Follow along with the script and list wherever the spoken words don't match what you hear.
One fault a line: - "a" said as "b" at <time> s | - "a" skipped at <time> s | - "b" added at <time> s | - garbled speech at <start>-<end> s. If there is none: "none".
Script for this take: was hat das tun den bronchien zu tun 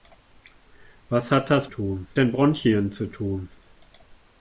none